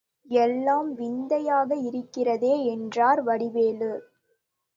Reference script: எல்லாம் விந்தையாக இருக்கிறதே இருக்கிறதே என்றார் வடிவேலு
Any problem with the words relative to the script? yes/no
yes